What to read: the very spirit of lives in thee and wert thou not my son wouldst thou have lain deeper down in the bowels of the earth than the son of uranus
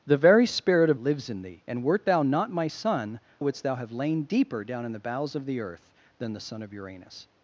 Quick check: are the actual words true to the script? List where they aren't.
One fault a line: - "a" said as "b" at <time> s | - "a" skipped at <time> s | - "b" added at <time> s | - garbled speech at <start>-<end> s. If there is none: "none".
none